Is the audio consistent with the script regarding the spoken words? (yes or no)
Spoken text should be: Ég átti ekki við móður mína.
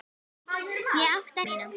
no